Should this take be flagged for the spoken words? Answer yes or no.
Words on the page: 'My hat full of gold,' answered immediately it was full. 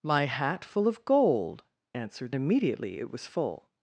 no